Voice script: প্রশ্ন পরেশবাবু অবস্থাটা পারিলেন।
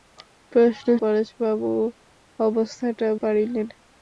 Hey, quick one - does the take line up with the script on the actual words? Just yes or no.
yes